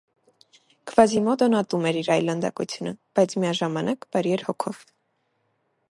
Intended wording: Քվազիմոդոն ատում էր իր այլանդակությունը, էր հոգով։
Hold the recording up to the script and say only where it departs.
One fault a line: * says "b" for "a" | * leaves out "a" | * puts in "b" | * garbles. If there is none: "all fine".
* puts in "բայց միաժամանակ բարի"